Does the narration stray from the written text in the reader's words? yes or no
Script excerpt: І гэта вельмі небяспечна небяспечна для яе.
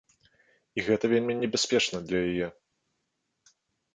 yes